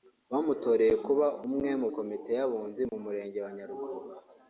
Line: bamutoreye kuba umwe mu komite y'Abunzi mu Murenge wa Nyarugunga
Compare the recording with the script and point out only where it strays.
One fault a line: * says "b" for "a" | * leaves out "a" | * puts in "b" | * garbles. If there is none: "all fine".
all fine